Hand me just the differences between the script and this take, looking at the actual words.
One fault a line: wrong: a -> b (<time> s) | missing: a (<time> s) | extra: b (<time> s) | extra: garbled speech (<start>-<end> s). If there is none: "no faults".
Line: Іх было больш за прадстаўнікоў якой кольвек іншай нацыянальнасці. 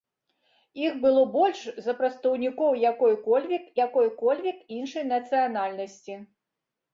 extra: якой кольвек (3.9 s)